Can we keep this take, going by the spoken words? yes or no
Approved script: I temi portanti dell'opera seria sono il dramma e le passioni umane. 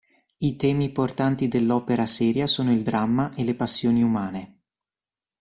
yes